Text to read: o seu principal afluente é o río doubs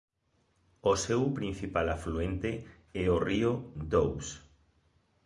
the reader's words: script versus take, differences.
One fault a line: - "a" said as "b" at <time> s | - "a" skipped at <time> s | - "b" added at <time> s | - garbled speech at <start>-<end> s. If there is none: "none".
none